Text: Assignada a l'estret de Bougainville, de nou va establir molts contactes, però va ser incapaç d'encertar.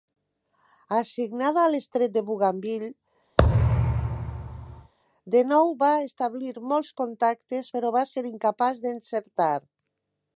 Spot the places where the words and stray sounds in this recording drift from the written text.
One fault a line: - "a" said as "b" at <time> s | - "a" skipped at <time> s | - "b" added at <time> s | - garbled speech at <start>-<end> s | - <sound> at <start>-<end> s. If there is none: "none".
- thud at 3.4-4.9 s